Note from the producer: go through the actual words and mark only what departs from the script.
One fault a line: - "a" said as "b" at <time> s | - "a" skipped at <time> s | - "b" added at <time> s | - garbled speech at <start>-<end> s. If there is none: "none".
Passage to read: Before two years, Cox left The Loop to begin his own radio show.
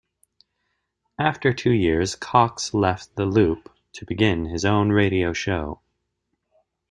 - "Before" said as "After" at 1.2 s